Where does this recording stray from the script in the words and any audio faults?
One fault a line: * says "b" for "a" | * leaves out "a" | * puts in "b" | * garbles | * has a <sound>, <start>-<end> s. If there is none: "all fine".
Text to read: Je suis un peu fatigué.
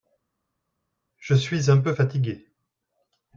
all fine